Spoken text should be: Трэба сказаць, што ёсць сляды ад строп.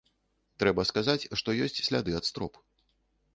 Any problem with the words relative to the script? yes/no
no